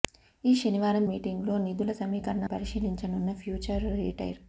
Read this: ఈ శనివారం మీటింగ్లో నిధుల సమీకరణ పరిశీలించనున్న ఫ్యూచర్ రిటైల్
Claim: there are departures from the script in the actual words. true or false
false